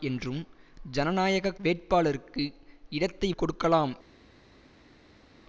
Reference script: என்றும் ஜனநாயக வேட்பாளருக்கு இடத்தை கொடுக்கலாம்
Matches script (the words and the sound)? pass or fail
pass